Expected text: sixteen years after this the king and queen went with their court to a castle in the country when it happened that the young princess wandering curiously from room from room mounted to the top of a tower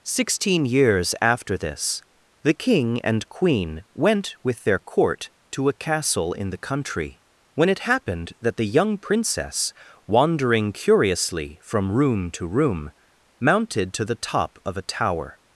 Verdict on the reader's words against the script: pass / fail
fail